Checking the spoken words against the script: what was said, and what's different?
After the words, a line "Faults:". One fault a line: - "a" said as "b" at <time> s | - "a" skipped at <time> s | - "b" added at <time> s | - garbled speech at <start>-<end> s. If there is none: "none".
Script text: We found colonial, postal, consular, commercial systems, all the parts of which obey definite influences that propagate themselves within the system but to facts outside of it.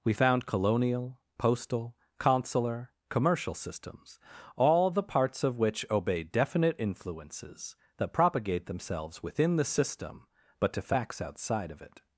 We found colonial, postal, consular, commercial systems, all the parts of which obey definite influences that propagate themselves within the system but to facts outside of it.
Faults:
none